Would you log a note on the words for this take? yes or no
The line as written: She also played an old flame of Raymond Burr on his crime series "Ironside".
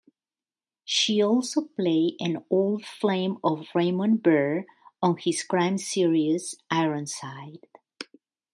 no